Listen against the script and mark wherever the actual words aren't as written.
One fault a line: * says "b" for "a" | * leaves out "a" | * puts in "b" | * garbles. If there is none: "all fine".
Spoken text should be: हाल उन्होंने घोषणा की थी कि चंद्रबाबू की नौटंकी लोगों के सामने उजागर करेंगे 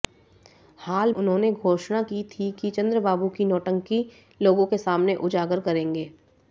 all fine